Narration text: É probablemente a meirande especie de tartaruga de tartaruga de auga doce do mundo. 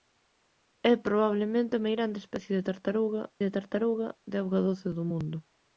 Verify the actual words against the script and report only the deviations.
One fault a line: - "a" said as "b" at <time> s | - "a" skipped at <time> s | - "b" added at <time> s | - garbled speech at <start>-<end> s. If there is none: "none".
none